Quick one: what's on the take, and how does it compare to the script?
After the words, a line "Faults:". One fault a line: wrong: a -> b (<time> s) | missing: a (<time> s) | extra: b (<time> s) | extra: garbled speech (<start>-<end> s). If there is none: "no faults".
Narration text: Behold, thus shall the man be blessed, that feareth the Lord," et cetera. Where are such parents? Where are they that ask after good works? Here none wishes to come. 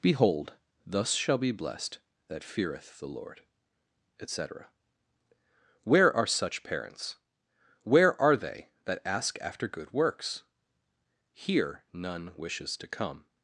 Behold, thus shall be blessed, that feareth the Lord," et cetera. Where are such parents? Where are they that ask after good works? Here none wishes to come.
Faults:
missing: the man (1.4 s)